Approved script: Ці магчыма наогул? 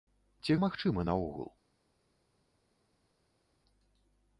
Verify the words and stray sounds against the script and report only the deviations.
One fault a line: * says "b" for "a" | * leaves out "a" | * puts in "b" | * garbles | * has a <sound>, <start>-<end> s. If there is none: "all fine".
all fine